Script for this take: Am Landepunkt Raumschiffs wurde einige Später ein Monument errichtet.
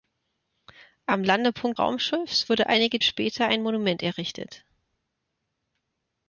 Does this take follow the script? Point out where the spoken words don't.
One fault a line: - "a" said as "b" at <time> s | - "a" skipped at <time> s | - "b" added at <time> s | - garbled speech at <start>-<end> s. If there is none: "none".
none